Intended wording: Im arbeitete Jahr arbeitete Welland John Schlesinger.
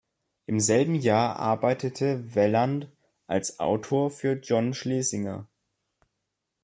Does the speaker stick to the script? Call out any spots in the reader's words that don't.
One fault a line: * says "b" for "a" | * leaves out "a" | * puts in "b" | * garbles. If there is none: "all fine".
* says "selben" for "arbeitete"
* puts in "als Autor für"